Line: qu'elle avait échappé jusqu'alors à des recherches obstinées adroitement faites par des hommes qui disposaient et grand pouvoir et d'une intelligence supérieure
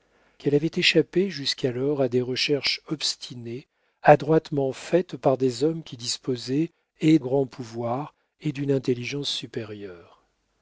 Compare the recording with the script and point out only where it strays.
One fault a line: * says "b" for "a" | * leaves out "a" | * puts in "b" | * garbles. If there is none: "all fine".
all fine